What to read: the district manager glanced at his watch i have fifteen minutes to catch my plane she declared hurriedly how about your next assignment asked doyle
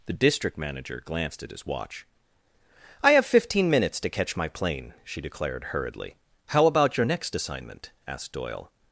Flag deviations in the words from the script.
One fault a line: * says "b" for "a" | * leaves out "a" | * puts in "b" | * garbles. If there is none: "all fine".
all fine